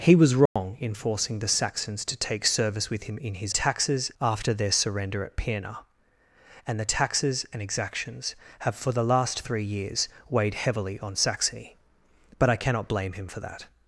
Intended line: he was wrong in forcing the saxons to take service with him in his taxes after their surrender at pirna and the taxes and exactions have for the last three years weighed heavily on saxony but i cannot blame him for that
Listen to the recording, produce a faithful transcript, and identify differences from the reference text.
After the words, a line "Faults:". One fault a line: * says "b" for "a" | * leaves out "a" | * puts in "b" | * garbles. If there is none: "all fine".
he was wrong in forcing the saxons to take service with him in his taxes after their surrender at pirna and the taxes and exactions have for the last three years weighed heavily on saxony but i cannot blame him for that
Faults:
all fine